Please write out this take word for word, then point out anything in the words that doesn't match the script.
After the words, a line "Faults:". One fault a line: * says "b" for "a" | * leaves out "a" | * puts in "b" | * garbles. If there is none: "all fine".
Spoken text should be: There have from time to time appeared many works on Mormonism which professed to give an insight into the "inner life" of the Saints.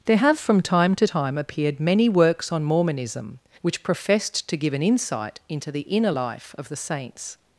There have from time to time appeared many works on Mormonism which professed to give an insight into the "inner life" of the Saints.
Faults:
all fine